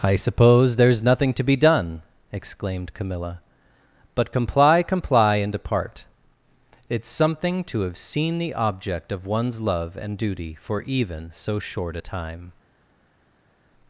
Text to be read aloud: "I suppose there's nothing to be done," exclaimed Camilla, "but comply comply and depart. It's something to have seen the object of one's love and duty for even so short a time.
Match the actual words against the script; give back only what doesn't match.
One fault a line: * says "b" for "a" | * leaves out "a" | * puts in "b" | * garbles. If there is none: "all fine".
all fine